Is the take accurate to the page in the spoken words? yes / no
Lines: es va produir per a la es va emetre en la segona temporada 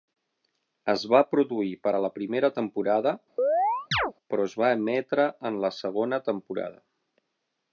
no